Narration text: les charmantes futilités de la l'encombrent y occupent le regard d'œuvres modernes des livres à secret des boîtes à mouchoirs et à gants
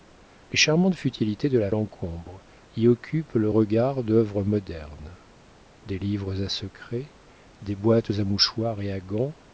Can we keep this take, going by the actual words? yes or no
yes